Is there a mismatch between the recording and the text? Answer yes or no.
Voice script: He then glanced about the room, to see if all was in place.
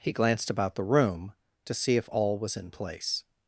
yes